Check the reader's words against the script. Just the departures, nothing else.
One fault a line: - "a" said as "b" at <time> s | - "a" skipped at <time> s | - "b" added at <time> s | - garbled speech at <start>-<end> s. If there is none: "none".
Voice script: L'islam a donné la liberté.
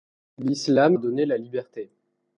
none